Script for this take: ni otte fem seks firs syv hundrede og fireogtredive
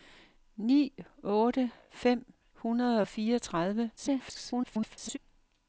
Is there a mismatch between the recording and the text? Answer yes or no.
yes